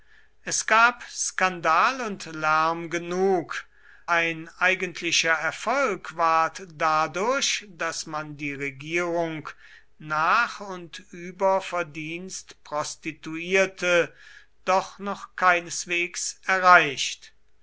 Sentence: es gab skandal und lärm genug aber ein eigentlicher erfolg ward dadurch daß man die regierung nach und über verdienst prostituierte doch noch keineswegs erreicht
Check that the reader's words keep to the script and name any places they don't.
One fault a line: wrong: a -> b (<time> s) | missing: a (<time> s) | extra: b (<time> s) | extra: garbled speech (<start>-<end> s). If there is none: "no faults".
missing: aber (3.7 s)